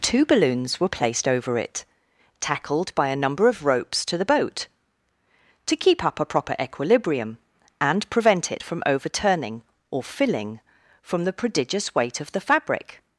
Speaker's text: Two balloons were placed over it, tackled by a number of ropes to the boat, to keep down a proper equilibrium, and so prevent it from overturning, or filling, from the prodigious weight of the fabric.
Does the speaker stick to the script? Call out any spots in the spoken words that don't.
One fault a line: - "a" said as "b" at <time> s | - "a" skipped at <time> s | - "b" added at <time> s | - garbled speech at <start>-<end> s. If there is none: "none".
- "down" said as "up" at 6.0 s
- "so" skipped at 8.1 s